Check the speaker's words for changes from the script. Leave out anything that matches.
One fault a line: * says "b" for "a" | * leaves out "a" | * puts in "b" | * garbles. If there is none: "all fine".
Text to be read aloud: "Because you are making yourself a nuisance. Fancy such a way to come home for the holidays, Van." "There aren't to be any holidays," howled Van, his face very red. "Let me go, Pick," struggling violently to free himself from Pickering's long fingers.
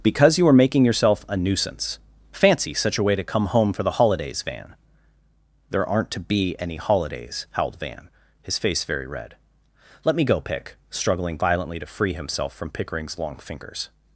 all fine